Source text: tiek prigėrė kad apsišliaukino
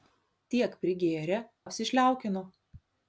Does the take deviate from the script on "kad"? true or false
true